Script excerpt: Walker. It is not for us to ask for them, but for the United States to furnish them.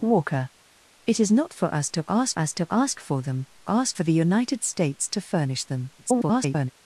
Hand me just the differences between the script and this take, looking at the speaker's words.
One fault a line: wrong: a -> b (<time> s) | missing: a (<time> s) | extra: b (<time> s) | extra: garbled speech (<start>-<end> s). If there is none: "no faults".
extra: us to ask (2.4 s)
wrong: but -> ask (3.7 s)
extra: garbled speech (6.0-6.7 s)